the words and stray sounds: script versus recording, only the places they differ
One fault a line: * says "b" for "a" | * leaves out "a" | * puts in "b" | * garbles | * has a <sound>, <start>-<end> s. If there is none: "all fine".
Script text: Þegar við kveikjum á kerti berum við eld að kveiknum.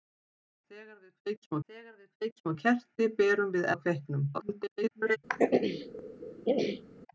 * puts in "þegar við kveikjum"
* leaves out "eld"
* garbles
* has a throat clearing, 5.3-6.8 s